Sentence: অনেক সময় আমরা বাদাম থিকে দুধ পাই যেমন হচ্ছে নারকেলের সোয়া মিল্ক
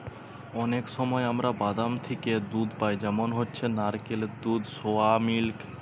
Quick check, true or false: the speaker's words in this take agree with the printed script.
false